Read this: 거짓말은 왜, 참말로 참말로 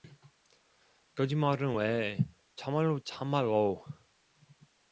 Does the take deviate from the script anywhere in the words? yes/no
no